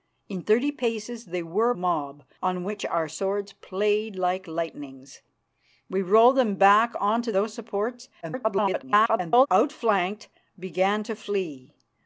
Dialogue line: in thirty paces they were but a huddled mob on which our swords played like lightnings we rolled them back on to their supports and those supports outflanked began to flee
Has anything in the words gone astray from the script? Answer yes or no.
yes